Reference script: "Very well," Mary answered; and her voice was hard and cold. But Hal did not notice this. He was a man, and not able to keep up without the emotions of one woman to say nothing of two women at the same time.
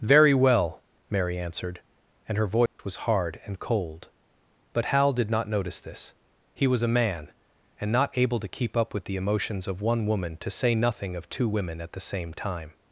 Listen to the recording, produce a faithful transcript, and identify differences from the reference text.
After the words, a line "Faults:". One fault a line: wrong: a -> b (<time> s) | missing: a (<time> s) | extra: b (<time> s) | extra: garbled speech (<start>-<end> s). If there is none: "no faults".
"Very well," Mary answered; and her voice was hard and cold. But Hal did not notice this. He was a man, and not able to keep up with the emotions of one woman to say nothing of two women at the same time.
Faults:
wrong: without -> with (8.9 s)